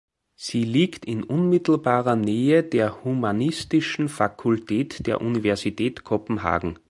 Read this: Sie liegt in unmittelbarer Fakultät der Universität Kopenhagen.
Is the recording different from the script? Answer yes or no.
yes